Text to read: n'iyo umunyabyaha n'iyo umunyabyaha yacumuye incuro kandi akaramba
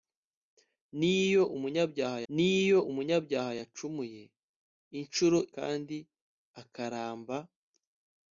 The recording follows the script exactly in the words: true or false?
true